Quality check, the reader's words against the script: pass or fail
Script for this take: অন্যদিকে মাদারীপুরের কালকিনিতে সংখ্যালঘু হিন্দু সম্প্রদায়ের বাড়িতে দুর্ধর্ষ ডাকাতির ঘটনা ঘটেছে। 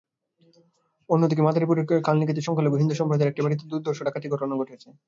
fail